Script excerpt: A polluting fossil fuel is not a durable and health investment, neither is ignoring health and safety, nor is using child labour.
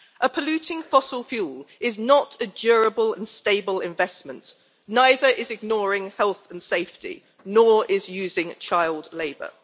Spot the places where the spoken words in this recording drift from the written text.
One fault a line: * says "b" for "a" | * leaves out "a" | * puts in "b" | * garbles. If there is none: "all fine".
* says "stable" for "health"